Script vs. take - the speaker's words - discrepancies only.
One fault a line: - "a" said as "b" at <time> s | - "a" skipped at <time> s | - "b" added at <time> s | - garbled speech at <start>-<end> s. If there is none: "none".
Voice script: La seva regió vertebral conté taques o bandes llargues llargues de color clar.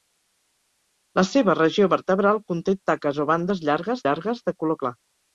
none